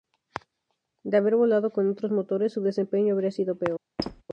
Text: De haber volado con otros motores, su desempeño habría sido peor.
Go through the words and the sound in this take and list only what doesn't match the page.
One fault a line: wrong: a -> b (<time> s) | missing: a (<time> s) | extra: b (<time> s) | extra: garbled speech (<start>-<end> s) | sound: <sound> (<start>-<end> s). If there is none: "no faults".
sound: squeak (4.0-4.2 s)